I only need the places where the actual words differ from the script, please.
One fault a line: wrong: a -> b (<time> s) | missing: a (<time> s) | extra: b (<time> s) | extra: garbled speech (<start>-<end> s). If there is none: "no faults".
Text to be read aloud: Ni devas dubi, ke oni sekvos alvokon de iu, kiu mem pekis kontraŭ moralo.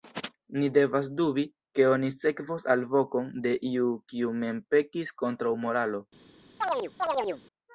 no faults